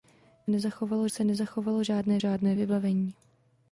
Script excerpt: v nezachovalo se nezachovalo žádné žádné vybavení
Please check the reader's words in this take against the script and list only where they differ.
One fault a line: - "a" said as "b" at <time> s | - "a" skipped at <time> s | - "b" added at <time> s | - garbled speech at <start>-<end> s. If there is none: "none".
none